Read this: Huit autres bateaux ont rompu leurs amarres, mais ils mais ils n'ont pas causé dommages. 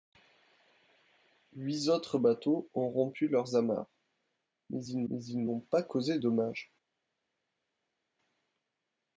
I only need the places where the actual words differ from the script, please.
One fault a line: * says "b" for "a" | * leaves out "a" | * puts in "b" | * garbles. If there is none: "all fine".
all fine